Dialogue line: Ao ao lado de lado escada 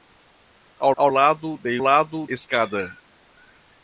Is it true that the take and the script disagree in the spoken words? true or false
false